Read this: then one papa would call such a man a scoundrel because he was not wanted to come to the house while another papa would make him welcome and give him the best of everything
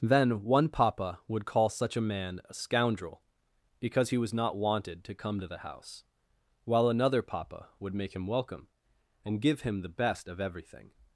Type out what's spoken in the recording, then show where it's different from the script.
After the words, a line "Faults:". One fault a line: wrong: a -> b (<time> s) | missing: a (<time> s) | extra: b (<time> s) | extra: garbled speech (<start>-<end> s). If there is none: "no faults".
then one papa would call such a man a scoundrel because he was not wanted to come to the house while another papa would make him welcome and give him the best of everything
Faults:
no faults